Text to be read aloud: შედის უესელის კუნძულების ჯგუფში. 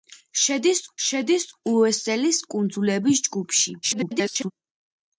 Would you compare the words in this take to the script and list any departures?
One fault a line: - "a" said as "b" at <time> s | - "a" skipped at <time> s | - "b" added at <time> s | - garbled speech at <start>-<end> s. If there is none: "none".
- "შედის" added at 1.1 s
- garbled speech at 3.8-4.5 s